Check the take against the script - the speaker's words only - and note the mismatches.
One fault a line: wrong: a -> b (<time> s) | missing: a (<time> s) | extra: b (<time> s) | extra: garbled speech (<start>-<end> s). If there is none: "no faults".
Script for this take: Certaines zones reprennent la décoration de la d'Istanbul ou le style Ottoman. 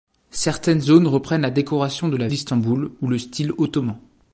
no faults